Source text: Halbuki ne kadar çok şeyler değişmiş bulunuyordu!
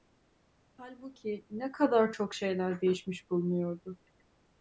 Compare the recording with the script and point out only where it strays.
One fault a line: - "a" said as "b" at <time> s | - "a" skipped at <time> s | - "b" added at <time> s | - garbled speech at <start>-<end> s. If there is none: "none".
none